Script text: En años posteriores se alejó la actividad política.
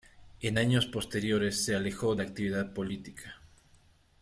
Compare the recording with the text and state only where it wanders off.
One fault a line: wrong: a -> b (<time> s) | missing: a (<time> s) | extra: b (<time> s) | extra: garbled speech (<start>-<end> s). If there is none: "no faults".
no faults